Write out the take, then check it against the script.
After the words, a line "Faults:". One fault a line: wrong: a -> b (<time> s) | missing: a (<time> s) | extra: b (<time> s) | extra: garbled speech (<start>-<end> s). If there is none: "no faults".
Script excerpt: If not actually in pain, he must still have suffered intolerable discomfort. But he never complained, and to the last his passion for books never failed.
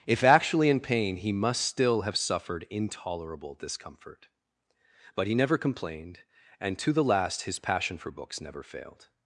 If actually in pain, he must still have suffered intolerable discomfort. But he never complained, and to the last his passion for books never failed.
Faults:
missing: not (0.2 s)